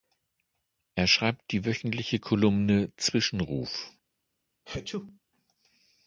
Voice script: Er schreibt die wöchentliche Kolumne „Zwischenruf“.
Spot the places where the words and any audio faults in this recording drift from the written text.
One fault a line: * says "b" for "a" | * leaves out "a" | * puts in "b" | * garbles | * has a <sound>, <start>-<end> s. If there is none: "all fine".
* has a sneeze, 4.7-5.2 s